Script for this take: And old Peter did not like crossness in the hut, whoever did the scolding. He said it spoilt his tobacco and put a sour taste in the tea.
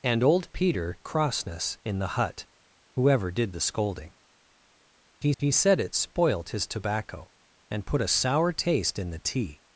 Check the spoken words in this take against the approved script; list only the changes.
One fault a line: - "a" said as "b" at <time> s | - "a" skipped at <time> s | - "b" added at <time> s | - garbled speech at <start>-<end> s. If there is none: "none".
- "did not like" skipped at 1.0 s
- "he" added at 5.4 s